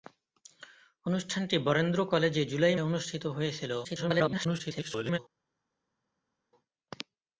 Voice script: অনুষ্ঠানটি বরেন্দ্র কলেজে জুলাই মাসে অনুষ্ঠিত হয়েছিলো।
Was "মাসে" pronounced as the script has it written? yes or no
no